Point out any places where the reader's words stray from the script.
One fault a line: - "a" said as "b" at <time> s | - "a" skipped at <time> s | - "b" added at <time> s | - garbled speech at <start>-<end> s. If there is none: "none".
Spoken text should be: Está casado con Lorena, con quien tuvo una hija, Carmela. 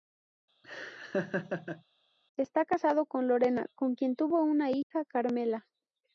none